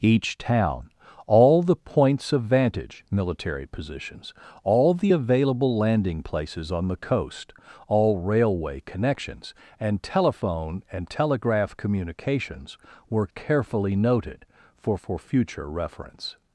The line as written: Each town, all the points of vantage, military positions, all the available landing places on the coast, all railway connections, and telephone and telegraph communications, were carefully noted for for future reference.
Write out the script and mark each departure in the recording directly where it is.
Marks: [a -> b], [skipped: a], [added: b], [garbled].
Each town, all the points of vantage, military positions, all the available landing places on the coast, all railway connections, and telephone and telegraph communications, were carefully noted for for future reference.